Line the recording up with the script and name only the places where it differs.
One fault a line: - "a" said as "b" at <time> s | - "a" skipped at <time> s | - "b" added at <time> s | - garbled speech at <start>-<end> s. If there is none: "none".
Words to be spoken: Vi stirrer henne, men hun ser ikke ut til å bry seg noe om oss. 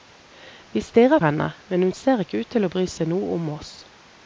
none